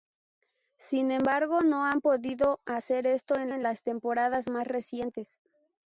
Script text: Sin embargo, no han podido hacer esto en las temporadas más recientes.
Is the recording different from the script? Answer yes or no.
yes